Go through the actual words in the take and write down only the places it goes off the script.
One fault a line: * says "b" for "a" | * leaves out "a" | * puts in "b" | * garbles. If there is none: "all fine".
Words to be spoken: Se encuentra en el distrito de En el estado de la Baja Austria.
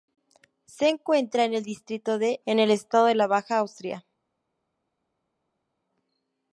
all fine